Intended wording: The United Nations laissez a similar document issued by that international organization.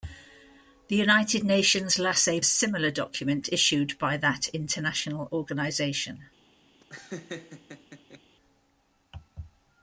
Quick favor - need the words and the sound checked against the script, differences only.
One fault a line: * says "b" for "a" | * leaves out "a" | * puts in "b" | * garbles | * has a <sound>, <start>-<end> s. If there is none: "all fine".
* has a laugh, 6.8-8.2 s